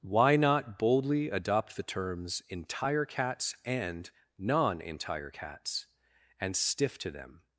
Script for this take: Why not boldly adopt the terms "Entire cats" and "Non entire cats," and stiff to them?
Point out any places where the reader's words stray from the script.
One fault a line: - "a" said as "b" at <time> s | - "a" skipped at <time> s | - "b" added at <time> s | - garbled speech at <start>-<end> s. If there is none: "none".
none